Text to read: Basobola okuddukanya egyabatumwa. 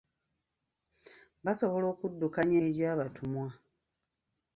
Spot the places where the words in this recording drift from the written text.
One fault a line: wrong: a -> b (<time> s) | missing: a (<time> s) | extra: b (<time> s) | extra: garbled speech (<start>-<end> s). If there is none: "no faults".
no faults